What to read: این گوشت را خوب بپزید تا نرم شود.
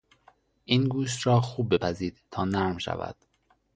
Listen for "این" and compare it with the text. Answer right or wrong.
right